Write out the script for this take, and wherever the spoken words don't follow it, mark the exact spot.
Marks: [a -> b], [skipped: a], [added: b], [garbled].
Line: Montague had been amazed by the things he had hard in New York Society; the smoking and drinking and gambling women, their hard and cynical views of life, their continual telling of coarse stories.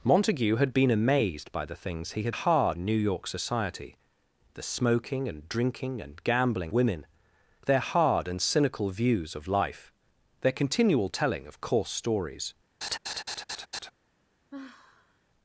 Montague had been amazed by the things he had hard in New York Society; the smoking and drinking and gambling women, their hard and cynical views of life, their continual telling of coarse stories.